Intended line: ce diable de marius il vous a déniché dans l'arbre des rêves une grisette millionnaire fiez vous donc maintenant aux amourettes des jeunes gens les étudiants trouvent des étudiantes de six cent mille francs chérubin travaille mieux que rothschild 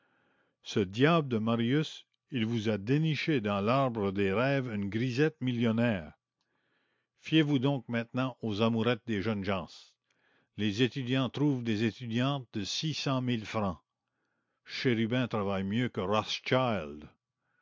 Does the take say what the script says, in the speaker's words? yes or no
yes